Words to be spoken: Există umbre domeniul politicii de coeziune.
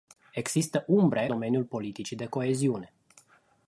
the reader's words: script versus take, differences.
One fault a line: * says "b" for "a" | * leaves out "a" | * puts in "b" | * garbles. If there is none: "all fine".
all fine